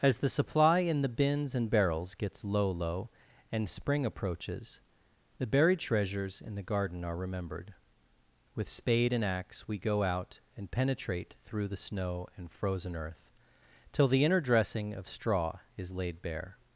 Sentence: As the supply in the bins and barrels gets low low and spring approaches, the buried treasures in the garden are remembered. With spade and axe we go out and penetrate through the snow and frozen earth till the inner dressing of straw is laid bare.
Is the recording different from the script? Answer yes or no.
no